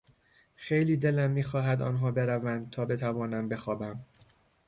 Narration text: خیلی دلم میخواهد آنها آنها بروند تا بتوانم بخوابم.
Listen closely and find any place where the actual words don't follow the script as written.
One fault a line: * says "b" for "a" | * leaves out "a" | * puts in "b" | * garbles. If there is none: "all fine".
* leaves out "آنها"